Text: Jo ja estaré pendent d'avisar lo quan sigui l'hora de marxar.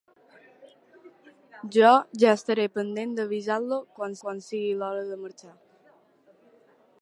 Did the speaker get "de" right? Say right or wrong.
right